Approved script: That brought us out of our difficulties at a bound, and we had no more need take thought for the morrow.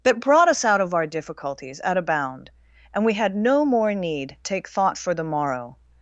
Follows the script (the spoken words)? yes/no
yes